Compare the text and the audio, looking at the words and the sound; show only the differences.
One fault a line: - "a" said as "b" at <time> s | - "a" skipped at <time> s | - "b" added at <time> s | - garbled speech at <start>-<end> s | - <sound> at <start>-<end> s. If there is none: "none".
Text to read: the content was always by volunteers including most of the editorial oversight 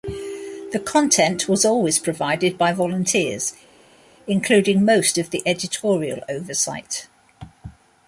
- "provided" added at 2.0 s